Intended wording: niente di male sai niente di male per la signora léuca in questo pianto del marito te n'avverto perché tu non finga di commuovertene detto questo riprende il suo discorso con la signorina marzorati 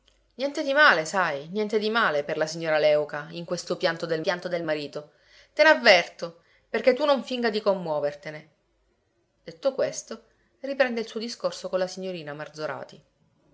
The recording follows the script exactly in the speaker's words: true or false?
false